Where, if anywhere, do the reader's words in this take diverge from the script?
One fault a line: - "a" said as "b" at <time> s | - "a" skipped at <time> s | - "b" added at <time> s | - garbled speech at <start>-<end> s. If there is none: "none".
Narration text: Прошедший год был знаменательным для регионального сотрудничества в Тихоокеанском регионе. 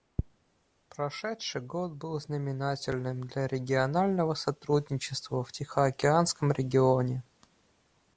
none